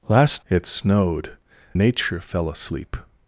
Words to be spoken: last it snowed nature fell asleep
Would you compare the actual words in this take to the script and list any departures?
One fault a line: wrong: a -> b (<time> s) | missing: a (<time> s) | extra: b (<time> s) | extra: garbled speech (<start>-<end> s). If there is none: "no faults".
no faults